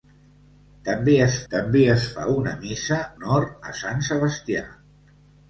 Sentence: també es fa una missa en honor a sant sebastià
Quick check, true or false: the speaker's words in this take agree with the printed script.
false